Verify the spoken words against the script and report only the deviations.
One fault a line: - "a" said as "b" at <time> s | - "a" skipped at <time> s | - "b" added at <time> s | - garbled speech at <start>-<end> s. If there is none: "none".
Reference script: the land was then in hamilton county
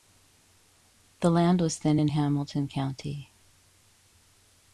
none